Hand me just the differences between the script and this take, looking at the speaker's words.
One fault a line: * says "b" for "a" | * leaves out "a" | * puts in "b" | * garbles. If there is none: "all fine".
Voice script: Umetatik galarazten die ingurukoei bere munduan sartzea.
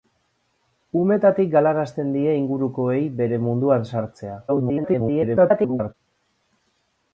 * garbles